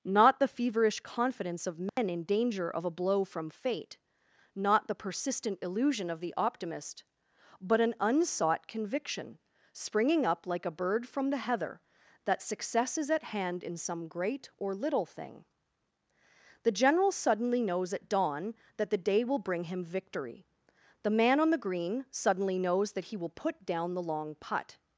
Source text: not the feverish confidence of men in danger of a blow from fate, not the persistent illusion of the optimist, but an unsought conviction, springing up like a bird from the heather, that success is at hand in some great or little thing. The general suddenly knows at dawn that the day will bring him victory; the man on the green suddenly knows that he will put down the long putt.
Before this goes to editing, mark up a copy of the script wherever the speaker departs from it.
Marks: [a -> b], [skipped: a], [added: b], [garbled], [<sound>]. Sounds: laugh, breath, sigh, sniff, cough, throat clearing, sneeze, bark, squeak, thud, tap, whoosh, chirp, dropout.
not the feverish confidence of men [dropout] in danger of a blow from fate, not the persistent illusion of the optimist, but an unsought conviction, springing up like a bird from the heather, that success is at hand in some great or little thing. The general suddenly knows at dawn that the day will bring him victory; the man on the green suddenly knows that he will put down the long putt.